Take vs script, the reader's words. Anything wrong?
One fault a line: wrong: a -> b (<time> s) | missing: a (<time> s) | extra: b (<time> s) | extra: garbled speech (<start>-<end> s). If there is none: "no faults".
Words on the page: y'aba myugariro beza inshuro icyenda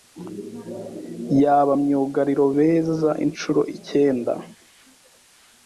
no faults